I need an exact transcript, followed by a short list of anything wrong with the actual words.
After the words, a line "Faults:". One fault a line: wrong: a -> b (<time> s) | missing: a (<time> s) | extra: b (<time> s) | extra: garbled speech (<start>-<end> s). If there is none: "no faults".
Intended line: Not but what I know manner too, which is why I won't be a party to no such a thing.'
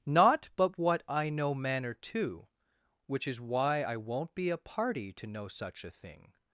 Not but what I know manner too, which is why I won't be a party to no such a thing.'
Faults:
no faults